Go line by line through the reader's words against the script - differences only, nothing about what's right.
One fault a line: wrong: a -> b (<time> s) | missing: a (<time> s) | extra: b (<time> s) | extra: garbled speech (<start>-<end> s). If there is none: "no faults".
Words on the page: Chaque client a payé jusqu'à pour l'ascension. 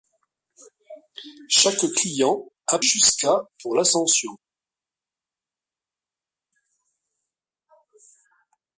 missing: payé (2.8 s)